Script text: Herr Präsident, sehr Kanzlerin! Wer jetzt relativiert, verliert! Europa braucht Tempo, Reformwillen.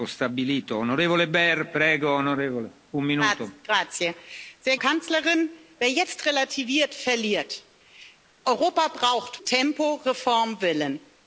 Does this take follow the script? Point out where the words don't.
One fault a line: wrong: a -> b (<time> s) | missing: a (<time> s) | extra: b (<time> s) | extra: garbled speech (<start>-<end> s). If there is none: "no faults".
no faults